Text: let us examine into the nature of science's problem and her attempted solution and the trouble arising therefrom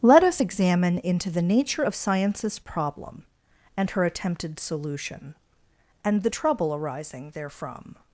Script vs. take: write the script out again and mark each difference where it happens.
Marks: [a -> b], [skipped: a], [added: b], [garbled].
let us examine into the nature of science's problem and her attempted solution and the trouble arising therefrom